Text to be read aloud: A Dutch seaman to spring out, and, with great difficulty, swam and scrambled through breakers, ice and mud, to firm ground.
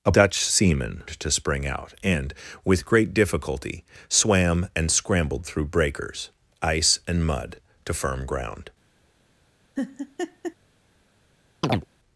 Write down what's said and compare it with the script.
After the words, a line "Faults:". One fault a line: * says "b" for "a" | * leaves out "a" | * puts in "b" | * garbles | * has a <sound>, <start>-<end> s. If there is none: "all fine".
A Dutch seaman to spring out, and, with great difficulty, swam and scrambled through breakers, ice and mud, to firm ground.
Faults:
* has a laugh, 9.8-10.6 s
* has a chirp, 11.6-11.9 s